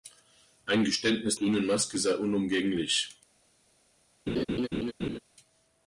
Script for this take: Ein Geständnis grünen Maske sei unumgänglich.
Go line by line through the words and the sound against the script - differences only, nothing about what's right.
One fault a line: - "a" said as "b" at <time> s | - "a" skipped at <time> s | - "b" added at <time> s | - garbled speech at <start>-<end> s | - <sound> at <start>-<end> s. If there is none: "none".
- laugh at 4.3-5.2 s